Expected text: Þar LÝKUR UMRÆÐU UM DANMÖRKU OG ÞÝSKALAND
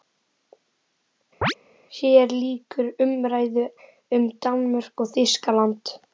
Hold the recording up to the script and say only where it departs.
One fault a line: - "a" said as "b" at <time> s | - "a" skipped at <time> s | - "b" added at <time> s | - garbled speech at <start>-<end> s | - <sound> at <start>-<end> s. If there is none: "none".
- chirp at 1.4-1.5 s
- "Þar" said as "HÉR" at 2.0 s